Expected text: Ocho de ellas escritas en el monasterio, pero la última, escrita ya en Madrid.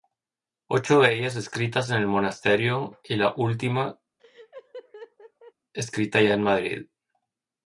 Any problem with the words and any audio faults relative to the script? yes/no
yes